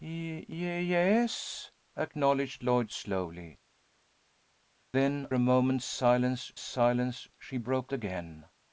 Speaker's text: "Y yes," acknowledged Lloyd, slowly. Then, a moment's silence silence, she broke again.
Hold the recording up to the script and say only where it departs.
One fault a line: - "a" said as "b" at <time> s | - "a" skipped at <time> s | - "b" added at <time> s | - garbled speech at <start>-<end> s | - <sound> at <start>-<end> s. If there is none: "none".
none